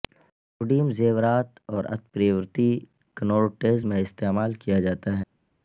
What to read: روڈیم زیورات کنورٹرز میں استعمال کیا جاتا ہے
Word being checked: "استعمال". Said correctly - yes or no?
yes